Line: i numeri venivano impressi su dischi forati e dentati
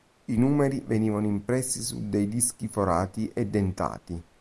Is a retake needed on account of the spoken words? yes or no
yes